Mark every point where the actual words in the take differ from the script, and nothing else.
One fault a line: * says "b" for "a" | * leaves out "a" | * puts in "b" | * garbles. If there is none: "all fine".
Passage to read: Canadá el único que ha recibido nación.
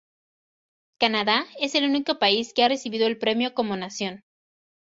* puts in "es"
* puts in "país"
* puts in "el premio como"